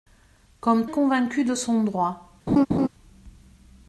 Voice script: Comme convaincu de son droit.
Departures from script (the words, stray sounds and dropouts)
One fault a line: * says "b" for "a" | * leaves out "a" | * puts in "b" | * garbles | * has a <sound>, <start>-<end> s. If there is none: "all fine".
* has a laugh, 2.5-2.9 s